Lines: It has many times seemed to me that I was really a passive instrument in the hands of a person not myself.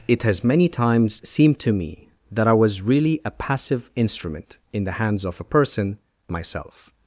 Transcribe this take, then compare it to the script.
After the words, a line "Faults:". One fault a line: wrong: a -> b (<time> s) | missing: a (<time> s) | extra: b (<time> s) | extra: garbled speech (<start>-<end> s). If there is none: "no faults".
It has many times seemed to me that I was really a passive instrument in the hands of a person myself.
Faults:
missing: not (6.0 s)